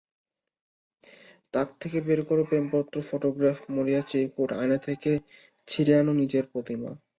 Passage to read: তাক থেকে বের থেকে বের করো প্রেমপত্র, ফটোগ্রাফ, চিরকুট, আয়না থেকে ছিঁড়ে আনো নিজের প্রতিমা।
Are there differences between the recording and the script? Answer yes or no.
yes